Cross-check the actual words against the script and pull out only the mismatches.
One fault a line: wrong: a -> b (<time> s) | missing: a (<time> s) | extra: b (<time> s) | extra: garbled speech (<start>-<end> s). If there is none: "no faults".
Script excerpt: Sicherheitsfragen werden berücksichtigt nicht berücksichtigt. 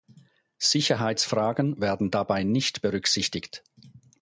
wrong: berücksichtigt -> dabei (2.1 s)